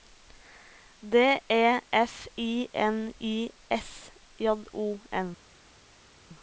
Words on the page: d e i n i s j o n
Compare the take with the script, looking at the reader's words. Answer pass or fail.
fail